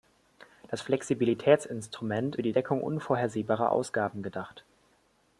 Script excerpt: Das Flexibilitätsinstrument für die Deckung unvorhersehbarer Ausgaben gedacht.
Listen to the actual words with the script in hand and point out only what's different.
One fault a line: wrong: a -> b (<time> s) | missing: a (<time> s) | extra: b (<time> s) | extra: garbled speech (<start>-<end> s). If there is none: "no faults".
no faults